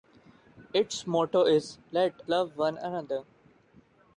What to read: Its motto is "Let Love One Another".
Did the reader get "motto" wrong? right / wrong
right